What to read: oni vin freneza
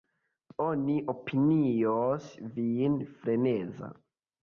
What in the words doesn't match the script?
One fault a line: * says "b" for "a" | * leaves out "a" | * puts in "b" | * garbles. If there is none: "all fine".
* puts in "opinios"